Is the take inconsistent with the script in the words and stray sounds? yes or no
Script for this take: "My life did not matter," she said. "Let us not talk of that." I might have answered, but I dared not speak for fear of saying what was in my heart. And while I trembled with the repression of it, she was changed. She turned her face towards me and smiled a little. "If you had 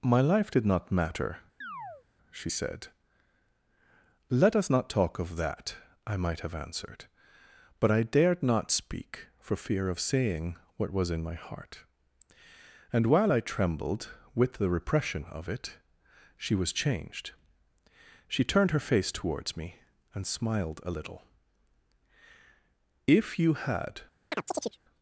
yes